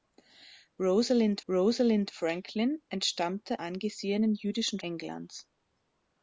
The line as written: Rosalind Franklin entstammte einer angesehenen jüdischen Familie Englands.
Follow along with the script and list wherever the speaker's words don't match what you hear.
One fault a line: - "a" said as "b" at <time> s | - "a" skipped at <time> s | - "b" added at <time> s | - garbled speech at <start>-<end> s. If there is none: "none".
- "rosalind" added at 1.5 s
- "einer" skipped at 3.6 s
- "Familie" skipped at 4.8 s